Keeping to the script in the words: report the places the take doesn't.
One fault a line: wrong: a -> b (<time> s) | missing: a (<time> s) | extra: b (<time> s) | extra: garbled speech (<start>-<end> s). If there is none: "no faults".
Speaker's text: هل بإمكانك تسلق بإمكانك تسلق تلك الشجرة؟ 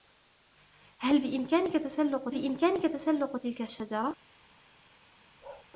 no faults